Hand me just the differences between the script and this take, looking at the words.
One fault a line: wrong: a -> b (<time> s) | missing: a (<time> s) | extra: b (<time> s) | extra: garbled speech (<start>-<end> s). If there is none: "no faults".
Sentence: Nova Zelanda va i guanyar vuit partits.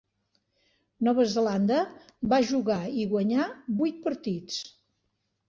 extra: jugar (2.5 s)